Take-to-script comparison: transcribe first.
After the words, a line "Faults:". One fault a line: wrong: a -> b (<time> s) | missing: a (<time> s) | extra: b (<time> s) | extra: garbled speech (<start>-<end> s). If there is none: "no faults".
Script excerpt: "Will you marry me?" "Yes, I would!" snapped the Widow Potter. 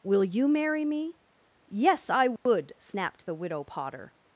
"Will you marry me?" "Yes, I would!" snapped the Widow Potter.
Faults:
no faults